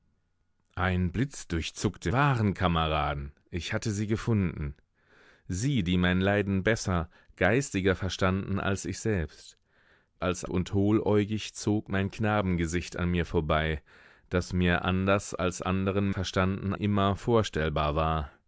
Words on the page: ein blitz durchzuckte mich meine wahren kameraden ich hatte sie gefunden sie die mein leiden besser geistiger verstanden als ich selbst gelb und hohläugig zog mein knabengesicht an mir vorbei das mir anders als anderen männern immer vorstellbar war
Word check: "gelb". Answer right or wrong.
wrong